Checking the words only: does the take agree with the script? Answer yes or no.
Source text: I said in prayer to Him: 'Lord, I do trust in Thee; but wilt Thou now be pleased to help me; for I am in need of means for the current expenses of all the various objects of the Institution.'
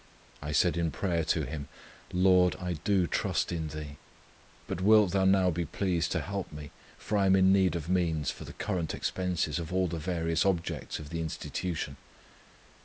yes